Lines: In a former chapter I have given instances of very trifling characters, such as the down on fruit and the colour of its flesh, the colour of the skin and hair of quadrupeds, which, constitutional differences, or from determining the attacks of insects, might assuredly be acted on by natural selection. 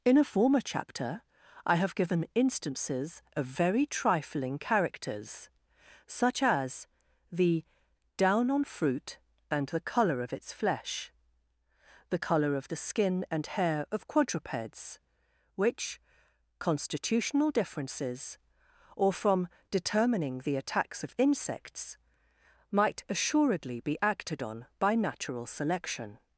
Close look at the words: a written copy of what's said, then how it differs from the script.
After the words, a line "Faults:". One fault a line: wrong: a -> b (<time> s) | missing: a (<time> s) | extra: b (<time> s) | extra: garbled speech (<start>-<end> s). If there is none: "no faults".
In a former chapter I have given instances of very trifling characters, such as the down on fruit and the colour of its flesh, the colour of the skin and hair of quadrupeds, which, constitutional differences, or from determining the attacks of insects, might assuredly be acted on by natural selection.
Faults:
no faults